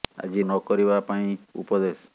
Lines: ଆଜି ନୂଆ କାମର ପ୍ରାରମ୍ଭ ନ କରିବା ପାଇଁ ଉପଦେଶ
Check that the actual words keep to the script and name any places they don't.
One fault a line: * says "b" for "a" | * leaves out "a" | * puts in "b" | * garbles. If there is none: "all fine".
* leaves out "ନୂଆ କାମର ପ୍ରାରମ୍ଭ"